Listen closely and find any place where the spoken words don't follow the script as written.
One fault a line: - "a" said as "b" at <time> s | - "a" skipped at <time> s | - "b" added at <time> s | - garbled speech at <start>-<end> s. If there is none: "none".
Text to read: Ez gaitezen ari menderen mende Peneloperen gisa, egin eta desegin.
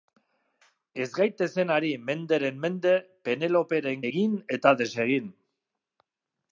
- "gisa" skipped at 4.0 s